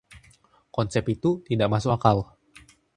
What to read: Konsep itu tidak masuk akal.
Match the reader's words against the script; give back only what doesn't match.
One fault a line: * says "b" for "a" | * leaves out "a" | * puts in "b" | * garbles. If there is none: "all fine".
all fine